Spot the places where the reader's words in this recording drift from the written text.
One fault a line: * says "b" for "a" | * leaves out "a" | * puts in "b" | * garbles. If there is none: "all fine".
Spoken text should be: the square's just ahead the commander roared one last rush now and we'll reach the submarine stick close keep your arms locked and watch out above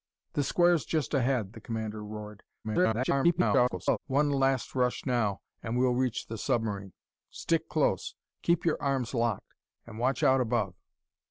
* garbles